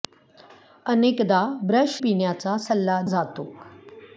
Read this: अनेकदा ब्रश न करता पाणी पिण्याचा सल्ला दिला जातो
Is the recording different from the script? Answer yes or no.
yes